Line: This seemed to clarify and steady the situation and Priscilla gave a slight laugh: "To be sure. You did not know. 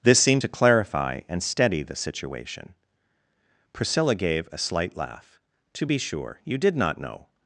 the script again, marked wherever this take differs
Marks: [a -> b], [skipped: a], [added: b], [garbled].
This seemed to clarify and steady the situation [skipped: and] Priscilla gave a slight laugh: "To be sure. You did not know.